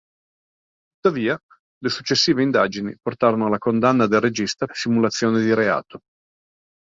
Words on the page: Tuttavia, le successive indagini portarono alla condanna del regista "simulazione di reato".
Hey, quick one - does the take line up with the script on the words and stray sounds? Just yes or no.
yes